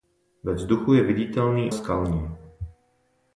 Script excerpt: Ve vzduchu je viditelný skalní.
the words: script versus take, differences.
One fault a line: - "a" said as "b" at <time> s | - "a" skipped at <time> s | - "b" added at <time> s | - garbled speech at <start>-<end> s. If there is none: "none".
none